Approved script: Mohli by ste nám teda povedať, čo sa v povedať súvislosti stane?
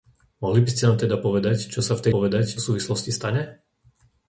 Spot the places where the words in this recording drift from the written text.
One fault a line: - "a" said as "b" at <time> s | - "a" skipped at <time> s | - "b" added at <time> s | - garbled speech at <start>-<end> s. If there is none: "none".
none